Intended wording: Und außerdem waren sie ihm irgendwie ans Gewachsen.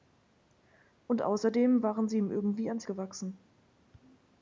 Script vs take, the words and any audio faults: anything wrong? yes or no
no